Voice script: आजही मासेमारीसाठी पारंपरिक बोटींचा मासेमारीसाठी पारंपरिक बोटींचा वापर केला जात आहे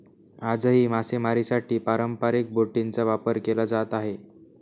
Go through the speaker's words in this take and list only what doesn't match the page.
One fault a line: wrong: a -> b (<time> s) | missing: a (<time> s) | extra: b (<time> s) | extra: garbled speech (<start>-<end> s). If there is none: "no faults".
missing: मासेमारीसाठी पारंपरिक बोटींचा (3.0 s)